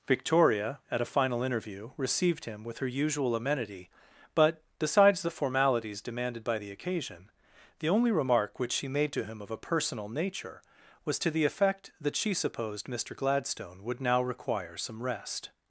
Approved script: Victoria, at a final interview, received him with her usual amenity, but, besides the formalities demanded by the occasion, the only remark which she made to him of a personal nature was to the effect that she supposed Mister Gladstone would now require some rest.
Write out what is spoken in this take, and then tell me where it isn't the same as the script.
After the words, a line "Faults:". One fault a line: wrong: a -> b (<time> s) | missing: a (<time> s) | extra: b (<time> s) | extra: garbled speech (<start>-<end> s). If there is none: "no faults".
Victoria, at a final interview, received him with her usual amenity, but, besides the formalities demanded by the occasion, the only remark which she made to him of a personal nature was to the effect that she supposed Mister Gladstone would now require some rest.
Faults:
no faults